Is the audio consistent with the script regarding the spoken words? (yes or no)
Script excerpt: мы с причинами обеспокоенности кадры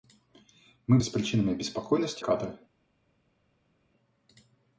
yes